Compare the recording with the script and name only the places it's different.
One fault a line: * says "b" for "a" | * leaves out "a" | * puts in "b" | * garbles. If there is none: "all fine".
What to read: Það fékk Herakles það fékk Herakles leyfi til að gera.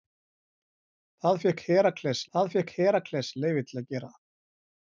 all fine